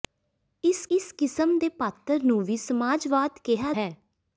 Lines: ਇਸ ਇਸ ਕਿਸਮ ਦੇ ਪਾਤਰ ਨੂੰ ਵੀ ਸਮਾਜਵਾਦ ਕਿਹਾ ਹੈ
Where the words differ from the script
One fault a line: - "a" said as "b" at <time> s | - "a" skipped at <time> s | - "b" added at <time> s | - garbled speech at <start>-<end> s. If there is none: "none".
none